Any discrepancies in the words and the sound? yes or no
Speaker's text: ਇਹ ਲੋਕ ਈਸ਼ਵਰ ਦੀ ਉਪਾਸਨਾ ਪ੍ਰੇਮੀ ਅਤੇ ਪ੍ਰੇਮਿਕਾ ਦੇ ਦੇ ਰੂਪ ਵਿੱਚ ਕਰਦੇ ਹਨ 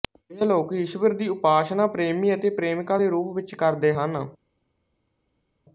yes